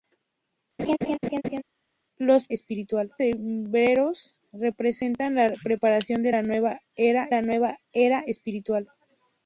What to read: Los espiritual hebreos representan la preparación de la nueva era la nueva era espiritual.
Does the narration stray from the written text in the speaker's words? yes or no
no